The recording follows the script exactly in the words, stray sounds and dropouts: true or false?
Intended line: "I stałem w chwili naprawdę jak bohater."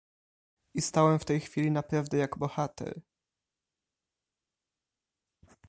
false